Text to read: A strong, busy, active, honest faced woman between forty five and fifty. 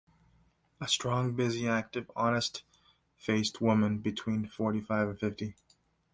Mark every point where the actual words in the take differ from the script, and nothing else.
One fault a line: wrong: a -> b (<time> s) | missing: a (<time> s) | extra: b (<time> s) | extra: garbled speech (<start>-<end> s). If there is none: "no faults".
no faults